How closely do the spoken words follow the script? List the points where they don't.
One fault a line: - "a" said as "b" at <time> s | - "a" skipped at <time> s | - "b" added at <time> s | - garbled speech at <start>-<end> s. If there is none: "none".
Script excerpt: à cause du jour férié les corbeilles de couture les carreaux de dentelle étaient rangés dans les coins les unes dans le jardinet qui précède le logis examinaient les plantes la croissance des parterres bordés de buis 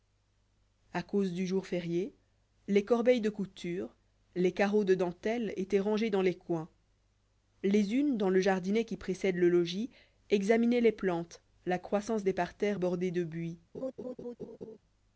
none